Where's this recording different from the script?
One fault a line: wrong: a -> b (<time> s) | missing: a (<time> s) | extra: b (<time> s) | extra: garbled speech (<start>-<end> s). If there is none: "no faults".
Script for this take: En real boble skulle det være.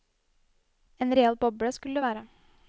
no faults